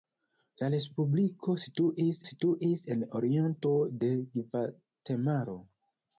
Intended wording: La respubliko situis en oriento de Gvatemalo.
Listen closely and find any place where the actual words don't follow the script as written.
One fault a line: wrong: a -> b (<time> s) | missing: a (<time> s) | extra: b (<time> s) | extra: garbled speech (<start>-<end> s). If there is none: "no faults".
extra: situis (2.3 s)